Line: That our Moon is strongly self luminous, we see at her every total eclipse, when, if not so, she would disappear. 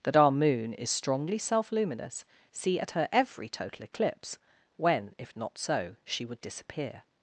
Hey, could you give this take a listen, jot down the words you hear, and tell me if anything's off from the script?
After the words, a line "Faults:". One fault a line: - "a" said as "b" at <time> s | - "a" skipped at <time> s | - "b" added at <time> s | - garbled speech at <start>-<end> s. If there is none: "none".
That our Moon is strongly self luminous, see at her every total eclipse, when, if not so, she would disappear.
Faults:
- "we" skipped at 2.2 s